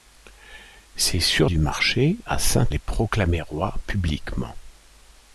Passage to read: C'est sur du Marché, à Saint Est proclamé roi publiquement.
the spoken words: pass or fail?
pass